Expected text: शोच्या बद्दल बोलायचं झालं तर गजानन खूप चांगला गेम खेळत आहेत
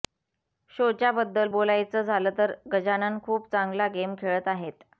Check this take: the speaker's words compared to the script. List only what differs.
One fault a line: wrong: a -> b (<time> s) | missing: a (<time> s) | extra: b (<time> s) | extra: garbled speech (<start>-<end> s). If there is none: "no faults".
no faults